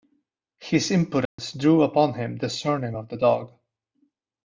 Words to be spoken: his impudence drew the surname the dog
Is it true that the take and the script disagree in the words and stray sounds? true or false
true